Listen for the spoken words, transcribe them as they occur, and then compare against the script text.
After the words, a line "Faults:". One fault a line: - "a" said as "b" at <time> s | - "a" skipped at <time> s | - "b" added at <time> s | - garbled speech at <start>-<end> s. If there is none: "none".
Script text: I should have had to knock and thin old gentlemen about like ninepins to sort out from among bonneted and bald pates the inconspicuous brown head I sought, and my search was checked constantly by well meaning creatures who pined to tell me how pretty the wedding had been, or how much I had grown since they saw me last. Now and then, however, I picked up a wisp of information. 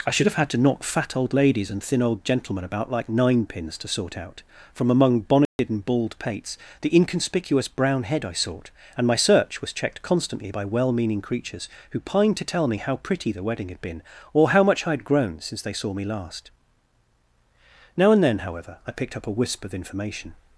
I should have had to knock fat old ladies and thin old gentlemen about like ninepins to sort out from among bonneted and bald pates the inconspicuous brown head I sought, and my search was checked constantly by well meaning creatures who pined to tell me how pretty the wedding had been, or how much I had grown since they saw me last. Now and then, however, I picked up a wisp of information.
Faults:
- "fat old ladies" added at 0.8 s